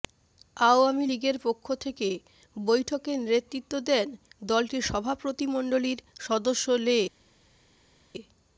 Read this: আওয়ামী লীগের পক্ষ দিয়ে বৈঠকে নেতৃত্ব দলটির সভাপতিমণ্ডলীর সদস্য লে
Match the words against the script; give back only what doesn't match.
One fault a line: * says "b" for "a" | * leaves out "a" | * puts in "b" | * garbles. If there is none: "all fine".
* says "থেকে" for "দিয়ে"
* puts in "দেন"